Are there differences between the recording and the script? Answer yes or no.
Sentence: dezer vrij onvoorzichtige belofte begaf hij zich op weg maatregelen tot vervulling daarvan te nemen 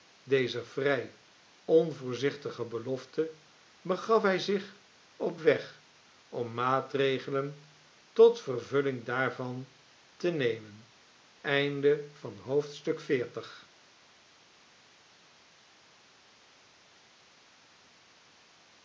yes